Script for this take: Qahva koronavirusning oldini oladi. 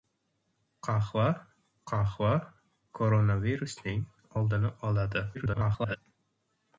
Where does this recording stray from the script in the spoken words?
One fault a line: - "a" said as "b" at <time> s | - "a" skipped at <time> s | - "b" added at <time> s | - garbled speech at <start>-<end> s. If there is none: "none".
- "qahva" added at 1.9 s
- garbled speech at 5.3-6.0 s